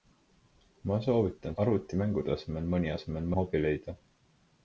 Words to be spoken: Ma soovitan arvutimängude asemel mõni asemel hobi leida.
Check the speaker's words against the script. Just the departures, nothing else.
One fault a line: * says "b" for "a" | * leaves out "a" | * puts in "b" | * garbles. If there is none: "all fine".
all fine